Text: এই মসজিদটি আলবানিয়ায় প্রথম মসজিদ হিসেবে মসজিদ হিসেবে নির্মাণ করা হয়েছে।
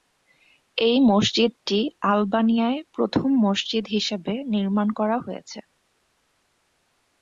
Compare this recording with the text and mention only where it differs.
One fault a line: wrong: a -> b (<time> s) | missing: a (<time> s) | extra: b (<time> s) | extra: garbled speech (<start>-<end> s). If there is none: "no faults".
missing: মসজিদ হিসেবে (4.3 s)